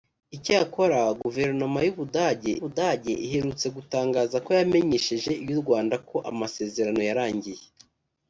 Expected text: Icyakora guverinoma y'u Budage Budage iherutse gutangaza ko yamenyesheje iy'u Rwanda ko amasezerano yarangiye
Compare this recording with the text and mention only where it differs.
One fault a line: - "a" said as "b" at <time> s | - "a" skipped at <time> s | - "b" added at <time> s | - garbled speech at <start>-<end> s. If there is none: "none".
none